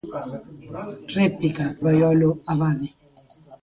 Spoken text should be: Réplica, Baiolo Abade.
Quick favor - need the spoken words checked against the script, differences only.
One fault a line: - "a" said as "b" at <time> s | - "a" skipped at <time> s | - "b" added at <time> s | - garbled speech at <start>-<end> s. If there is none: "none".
none